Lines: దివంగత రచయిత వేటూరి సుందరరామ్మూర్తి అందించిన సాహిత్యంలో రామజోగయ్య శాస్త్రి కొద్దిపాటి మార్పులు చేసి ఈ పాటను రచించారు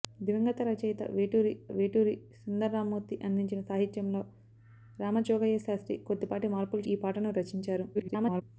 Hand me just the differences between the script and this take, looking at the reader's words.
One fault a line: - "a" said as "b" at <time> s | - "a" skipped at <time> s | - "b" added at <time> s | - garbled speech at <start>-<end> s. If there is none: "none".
- "వేటూరి" added at 1.7 s
- "చేసి" skipped at 6.8 s
- garbled speech at 7.9-8.4 s